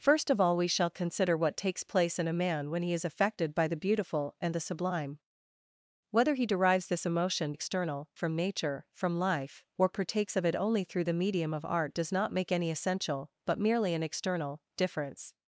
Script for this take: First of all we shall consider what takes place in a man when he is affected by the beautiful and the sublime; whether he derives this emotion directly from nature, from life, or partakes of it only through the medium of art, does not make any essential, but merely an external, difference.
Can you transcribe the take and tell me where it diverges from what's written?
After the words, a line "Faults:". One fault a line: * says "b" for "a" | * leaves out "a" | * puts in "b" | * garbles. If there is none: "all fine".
First of all we shall consider what takes place in a man when he is affected by the beautiful and the sublime; whether he derives this emotion external from nature, from life, or partakes of it only through the medium of art, does not make any essential, but merely an external, difference.
Faults:
* says "external" for "directly"